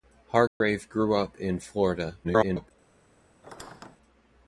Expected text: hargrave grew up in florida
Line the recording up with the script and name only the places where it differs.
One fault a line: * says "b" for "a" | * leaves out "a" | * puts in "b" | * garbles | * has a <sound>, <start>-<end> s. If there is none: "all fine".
* has a dropout, 0.5-0.6 s
* garbles
* has a squeak, 3.4-4.0 s